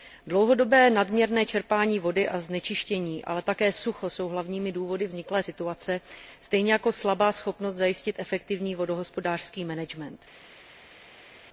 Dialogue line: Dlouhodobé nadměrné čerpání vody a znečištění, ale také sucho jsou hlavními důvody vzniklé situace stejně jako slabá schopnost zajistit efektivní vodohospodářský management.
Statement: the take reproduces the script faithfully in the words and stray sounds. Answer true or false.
true